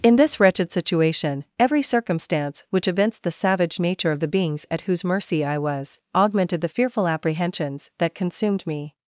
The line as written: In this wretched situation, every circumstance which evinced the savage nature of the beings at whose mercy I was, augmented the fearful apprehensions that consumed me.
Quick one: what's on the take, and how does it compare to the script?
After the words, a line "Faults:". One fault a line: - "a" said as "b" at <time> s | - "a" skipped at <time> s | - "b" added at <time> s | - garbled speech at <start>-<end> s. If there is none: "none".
In this wretched situation, every circumstance which evinced the savage nature of the beings at whose mercy I was, augmented the fearful apprehensions that consumed me.
Faults:
none